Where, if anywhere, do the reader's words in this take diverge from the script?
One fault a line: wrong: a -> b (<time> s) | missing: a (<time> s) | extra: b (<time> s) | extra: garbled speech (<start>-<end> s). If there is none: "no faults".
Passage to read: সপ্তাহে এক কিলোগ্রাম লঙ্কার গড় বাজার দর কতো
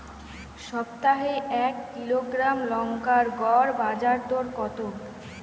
no faults